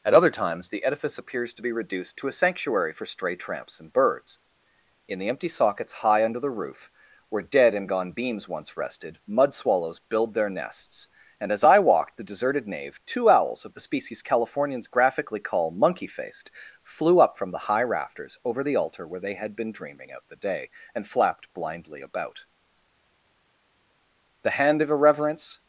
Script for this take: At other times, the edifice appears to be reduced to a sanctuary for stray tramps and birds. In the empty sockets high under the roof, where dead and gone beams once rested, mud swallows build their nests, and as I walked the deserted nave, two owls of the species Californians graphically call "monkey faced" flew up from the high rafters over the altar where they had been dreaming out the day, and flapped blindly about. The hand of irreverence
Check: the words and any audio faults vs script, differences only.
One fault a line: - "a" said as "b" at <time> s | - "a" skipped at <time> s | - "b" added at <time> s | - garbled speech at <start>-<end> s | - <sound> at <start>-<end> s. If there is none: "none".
none